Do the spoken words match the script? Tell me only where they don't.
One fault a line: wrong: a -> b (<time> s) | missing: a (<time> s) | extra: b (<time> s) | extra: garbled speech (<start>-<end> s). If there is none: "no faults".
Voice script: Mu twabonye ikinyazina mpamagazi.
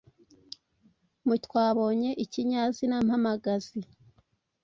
no faults